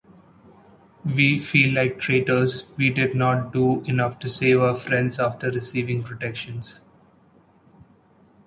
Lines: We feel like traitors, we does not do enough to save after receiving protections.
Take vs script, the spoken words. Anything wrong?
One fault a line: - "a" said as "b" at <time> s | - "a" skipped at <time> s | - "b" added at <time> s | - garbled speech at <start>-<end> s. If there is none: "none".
- "does" said as "did" at 2.9 s
- "our friends" added at 4.6 s